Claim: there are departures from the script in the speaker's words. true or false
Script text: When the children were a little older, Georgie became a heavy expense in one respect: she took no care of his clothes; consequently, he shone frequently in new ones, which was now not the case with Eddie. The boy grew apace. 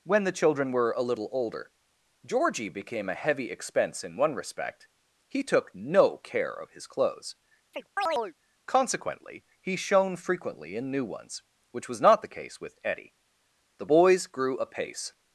true